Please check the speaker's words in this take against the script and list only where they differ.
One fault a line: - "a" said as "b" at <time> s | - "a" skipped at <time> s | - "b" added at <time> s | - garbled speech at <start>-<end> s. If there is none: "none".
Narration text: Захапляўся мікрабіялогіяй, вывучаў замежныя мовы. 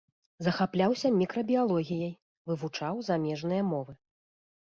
none